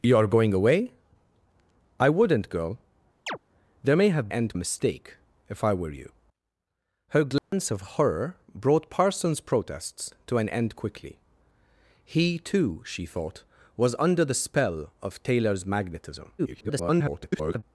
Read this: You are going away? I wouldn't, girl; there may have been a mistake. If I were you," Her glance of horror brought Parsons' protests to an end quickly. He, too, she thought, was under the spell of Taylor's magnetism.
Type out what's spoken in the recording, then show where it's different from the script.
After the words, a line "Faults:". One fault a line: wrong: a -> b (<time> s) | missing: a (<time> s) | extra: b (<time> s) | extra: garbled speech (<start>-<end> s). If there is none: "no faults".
You are going away? I wouldn't, girl; there may have end a mistake. If I were you," Her glance of horror brought Parsons' protests to an end quickly. He, too, she thought, was under the spell of Taylor's magnetism. [garbled]
Faults:
wrong: been -> end (4.3 s)
extra: garbled speech (16.4-17.6 s)